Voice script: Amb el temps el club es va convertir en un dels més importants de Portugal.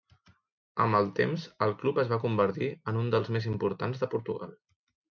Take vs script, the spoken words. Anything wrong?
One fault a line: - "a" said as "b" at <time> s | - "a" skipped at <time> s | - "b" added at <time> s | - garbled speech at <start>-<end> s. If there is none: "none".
none